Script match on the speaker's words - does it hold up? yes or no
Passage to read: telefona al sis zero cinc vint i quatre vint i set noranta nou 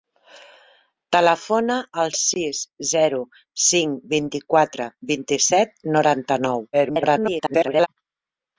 no